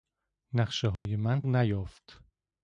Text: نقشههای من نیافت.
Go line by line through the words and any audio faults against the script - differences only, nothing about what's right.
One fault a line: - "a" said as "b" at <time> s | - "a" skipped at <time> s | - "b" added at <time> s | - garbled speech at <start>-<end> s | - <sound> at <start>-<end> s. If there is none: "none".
- dropout at 1.0-1.1 s